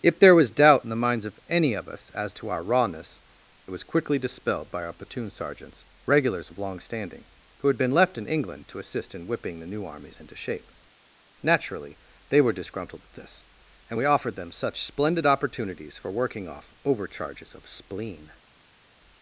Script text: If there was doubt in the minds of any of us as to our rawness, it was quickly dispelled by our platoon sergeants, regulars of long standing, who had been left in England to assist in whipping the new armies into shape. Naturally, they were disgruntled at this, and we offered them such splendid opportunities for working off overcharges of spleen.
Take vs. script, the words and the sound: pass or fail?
pass